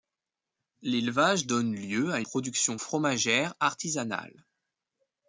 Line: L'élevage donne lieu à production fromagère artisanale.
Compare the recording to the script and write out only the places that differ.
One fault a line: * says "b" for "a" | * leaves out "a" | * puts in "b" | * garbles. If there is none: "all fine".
all fine